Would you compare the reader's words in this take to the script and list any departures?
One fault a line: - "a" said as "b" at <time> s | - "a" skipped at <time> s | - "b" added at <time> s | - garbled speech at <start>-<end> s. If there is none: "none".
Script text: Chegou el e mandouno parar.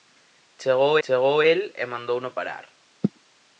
- "chegou" added at 1.0 s